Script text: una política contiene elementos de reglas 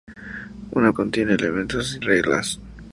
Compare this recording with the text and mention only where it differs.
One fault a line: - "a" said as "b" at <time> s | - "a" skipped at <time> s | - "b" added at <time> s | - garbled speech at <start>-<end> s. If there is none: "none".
- "política" skipped at 0.9 s
- "de" skipped at 2.0 s